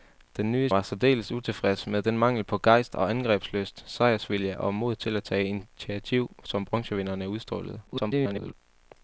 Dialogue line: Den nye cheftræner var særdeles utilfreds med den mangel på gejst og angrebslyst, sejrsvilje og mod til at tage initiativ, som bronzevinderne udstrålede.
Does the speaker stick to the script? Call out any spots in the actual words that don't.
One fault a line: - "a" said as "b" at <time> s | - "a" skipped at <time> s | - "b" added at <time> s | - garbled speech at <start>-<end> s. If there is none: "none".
- "cheftræner" skipped at 0.7 s
- garbled speech at 7.9-8.5 s